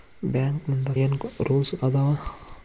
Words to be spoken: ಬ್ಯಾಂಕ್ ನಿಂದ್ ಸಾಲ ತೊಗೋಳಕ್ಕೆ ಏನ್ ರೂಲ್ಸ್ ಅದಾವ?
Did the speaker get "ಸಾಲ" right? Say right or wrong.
wrong